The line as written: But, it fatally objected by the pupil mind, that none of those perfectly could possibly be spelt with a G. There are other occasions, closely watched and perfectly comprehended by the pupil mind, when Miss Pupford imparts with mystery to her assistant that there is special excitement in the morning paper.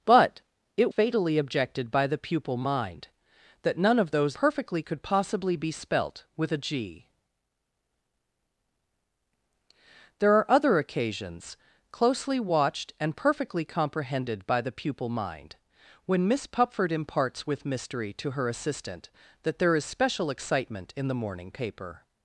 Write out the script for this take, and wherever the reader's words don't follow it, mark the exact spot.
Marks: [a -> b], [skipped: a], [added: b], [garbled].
But, it fatally objected by the pupil mind, that none of those perfectly could possibly be spelt with a G. There are other occasions, closely watched and perfectly comprehended by the pupil mind, when Miss Pupford imparts with mystery to her assistant that there is special excitement in the morning paper.